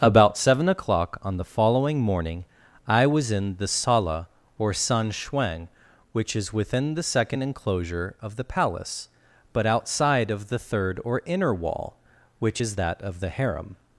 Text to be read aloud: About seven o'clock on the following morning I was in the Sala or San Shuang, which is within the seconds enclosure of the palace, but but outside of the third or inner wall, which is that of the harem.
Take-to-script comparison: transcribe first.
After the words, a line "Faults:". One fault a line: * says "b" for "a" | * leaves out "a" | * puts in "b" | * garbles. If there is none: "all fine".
About seven o'clock on the following morning I was in the Sala or San Shuang, which is within the second enclosure of the palace, but outside of the third or inner wall, which is that of the harem.
Faults:
* says "second" for "seconds"
* leaves out "but"